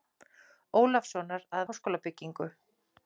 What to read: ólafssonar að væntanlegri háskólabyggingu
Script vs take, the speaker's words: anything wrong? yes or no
yes